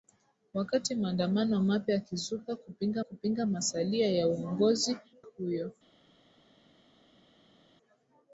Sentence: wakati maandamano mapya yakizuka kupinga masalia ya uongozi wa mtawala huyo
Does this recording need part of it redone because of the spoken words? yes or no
yes